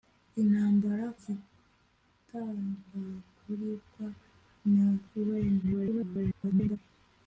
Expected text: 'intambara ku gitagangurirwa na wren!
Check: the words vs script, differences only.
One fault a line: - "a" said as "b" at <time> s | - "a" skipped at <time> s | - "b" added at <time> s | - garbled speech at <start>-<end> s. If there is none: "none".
- "ku" skipped at 1.1 s
- garbled speech at 5.6-6.8 s